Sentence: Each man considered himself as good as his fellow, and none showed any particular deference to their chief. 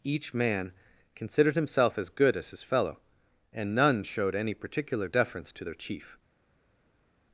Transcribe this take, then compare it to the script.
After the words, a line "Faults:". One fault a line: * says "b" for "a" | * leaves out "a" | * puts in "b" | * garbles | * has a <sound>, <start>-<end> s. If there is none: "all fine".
Each man considered himself as good as his fellow, and none showed any particular deference to their chief.
Faults:
all fine